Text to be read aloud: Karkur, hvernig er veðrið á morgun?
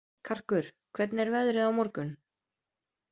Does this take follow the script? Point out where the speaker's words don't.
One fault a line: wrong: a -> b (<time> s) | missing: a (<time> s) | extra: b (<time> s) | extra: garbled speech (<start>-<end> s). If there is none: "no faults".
no faults